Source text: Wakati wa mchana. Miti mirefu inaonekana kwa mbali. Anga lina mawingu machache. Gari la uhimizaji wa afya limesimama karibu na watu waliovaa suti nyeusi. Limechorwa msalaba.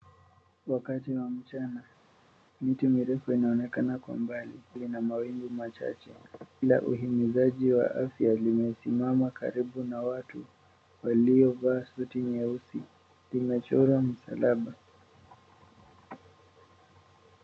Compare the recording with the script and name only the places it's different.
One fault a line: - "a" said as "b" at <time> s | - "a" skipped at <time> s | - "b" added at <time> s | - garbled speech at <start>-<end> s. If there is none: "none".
- "Anga" skipped at 4.6 s
- "Gari" skipped at 6.1 s